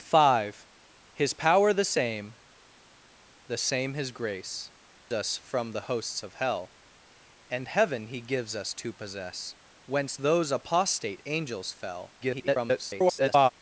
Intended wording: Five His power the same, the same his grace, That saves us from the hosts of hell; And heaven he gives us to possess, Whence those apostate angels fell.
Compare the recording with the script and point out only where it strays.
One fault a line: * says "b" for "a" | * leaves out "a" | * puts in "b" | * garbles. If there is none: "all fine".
* leaves out "That saves"
* garbles